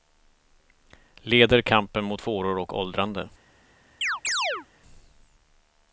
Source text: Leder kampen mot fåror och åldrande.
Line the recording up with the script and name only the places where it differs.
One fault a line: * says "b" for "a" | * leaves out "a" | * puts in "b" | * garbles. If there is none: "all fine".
all fine